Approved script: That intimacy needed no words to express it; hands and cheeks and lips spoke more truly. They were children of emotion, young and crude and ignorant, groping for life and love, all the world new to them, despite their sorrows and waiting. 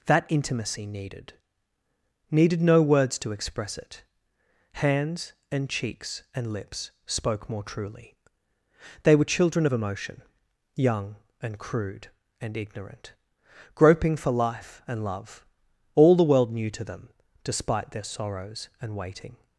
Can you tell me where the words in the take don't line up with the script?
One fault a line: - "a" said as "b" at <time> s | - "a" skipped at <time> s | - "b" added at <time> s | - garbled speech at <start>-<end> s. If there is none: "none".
- "needed" added at 2.3 s